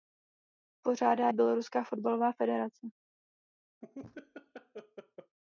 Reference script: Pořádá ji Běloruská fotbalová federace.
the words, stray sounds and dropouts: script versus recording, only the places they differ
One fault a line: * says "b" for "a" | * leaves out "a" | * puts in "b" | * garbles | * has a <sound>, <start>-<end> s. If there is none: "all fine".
* leaves out "ji"
* has a laugh, 3.8-5.4 s